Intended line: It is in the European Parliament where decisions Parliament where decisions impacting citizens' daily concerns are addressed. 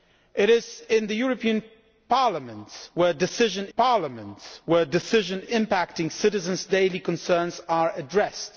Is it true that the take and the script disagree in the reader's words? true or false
false